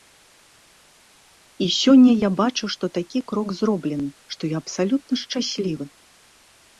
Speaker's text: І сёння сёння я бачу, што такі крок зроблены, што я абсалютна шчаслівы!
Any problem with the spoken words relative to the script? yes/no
yes